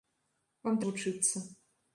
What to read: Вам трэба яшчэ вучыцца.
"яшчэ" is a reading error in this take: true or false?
true